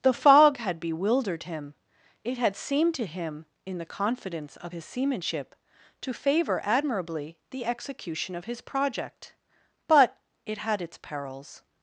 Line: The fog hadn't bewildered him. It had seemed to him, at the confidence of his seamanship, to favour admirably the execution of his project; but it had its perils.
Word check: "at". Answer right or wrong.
wrong